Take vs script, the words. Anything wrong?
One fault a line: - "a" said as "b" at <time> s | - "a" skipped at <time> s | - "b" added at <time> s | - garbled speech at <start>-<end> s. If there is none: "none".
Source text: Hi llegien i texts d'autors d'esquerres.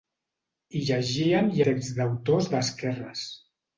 none